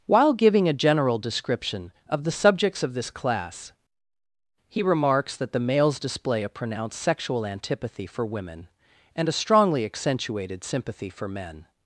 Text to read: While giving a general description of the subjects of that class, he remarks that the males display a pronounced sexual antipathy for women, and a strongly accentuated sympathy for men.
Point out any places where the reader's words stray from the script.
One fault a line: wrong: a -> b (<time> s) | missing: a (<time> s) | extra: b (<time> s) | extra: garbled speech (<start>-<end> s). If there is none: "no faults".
wrong: that -> this (2.9 s)